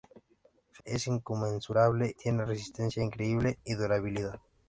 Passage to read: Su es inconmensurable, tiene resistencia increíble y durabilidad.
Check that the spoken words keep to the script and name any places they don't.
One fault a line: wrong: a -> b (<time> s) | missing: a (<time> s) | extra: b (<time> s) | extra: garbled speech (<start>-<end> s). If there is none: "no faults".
no faults